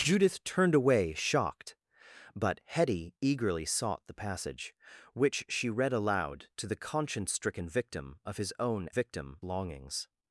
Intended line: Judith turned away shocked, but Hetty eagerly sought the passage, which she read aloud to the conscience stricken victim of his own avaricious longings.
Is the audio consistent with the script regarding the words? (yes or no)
no